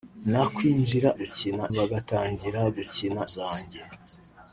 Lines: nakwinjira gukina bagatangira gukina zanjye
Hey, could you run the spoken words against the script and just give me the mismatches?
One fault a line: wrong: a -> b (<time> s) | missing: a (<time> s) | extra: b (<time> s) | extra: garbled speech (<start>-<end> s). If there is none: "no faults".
no faults